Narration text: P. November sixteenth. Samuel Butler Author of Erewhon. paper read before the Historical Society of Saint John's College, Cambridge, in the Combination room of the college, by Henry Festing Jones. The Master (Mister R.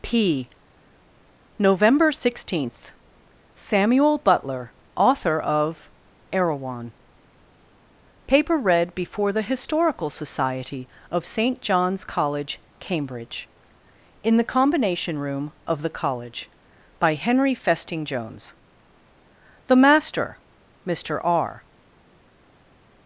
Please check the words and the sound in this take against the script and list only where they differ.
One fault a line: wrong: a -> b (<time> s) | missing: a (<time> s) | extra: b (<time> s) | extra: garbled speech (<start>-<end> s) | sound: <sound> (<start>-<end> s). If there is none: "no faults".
no faults